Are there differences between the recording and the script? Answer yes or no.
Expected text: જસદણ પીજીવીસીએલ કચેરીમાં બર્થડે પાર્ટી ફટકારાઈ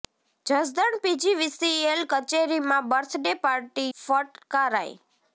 no